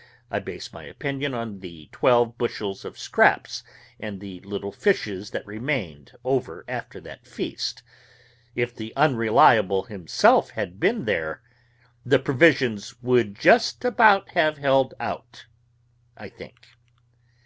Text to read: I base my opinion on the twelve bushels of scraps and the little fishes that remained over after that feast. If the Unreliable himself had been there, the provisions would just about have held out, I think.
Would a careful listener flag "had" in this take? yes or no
no